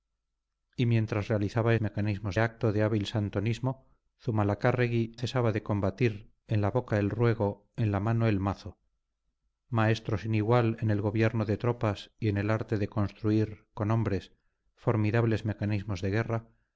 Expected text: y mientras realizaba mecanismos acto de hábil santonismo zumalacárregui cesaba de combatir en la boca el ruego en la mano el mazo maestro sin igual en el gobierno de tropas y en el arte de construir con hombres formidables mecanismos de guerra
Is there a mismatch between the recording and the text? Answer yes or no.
no